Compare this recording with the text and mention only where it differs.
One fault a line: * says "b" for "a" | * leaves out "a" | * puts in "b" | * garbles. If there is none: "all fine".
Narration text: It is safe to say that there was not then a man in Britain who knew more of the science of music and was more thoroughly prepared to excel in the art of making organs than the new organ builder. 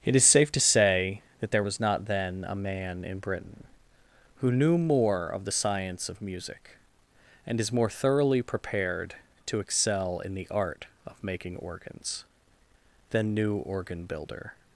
* says "is" for "was"
* leaves out "the"